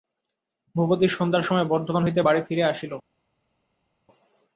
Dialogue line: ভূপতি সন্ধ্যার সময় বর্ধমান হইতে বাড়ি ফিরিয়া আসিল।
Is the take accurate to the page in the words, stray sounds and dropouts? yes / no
yes